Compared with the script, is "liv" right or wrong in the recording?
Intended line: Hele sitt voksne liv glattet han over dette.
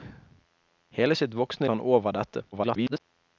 wrong